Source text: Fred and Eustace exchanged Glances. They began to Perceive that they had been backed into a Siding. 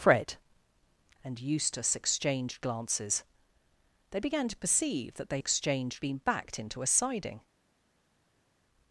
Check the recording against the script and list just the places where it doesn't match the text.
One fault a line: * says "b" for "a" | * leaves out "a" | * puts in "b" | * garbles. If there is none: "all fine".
* says "exchanged" for "had"